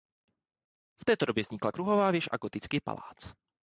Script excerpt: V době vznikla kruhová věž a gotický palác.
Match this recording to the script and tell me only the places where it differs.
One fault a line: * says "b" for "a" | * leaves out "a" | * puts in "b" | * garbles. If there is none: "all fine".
* puts in "této"